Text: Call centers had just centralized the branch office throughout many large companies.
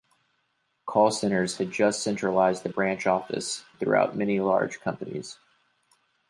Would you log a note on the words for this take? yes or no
no